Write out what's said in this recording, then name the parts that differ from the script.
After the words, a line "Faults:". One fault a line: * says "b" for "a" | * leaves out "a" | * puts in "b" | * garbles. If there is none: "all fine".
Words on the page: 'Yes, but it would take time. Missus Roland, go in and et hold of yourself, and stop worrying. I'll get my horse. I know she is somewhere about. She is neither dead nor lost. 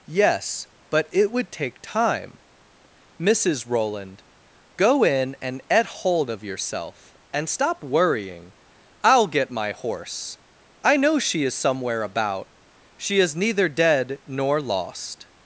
'Yes, but it would take time. Missus Roland, go in and et hold of yourself, and stop worrying. I'll get my horse. I know she is somewhere about. She is neither dead nor lost.
Faults:
all fine